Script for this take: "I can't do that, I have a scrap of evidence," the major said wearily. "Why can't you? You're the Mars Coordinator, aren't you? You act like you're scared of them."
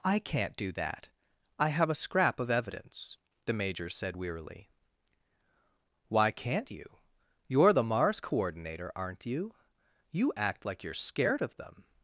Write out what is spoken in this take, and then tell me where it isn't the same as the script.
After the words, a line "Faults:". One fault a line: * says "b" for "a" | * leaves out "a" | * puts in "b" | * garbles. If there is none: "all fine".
"I can't do that, I have a scrap of evidence," the major said wearily. "Why can't you? You're the Mars Coordinator, aren't you? You act like you're scared of them."
Faults:
all fine